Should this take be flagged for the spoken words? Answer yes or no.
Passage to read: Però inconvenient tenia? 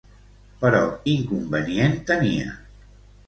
no